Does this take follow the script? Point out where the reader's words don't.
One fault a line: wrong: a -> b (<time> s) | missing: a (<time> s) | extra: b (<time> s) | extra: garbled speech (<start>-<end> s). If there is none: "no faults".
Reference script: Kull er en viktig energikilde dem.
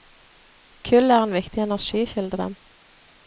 no faults